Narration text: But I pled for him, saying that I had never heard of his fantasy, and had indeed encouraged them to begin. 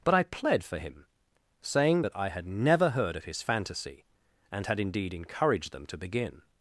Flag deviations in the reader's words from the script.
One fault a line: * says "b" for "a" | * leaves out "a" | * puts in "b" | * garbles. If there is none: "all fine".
all fine